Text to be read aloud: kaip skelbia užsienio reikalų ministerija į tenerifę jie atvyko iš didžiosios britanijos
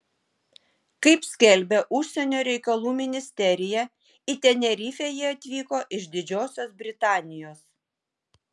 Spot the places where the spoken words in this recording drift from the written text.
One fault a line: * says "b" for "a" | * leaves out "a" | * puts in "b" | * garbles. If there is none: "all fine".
all fine